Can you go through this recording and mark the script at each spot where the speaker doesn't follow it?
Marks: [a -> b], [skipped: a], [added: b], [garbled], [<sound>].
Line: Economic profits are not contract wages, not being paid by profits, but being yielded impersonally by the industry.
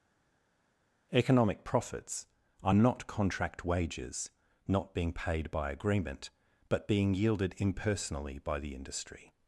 Economic profits are not contract wages, not being paid by [profits, -> agreement] but being yielded impersonally by the industry.